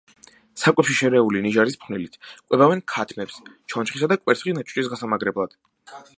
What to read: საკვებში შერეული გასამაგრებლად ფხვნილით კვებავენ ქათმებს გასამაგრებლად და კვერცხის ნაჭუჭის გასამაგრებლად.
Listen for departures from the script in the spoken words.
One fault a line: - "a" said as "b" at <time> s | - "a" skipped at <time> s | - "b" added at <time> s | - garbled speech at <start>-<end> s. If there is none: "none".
- "გასამაგრებლად" said as "ნიჟარის" at 1.5 s
- "გასამაგრებლად" said as "ჩონჩხისა" at 3.8 s